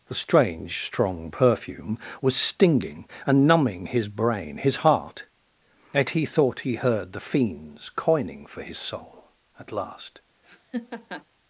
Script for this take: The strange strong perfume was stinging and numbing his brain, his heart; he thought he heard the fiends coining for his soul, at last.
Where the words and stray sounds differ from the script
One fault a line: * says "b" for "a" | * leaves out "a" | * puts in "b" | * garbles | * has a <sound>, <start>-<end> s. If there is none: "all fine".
* puts in "yet"
* has a laugh, 10.4-11.3 s